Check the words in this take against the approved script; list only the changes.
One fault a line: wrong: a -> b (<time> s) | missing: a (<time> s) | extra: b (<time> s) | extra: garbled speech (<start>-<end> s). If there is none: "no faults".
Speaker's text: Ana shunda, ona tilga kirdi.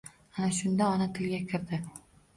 no faults